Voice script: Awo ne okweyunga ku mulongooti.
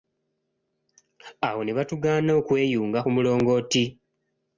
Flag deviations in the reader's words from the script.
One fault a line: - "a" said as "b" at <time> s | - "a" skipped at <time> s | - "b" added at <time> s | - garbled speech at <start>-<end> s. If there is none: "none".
- "batugaana" added at 1.8 s